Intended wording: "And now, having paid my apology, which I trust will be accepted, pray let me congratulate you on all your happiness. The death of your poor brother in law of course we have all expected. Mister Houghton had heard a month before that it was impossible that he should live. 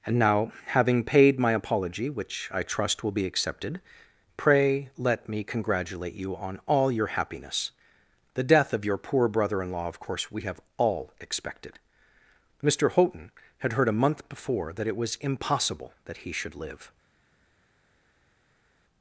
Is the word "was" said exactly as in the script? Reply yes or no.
yes